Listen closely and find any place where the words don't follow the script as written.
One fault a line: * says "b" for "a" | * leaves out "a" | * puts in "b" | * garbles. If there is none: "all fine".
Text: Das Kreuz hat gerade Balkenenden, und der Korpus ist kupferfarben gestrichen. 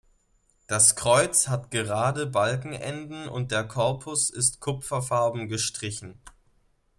all fine